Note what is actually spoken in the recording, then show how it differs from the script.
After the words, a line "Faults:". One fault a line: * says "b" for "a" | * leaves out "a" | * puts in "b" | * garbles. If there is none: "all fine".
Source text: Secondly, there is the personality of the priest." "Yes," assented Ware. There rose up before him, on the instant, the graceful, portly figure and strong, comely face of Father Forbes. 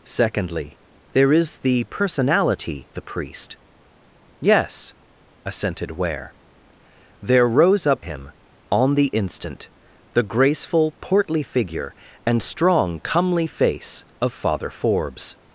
Secondly, there is the personality the priest." "Yes," assented Ware. There rose up him, on the instant, the graceful, portly figure and strong, comely face of Father Forbes.
Faults:
* leaves out "of"
* leaves out "before"